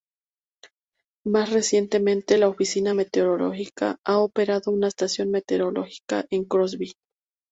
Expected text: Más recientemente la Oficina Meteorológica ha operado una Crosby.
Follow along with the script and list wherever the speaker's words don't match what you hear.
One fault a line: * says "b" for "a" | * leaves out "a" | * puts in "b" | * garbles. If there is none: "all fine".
* puts in "estación meteorológica en"